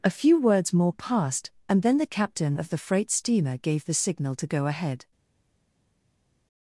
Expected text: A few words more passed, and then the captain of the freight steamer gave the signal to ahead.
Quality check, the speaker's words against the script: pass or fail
fail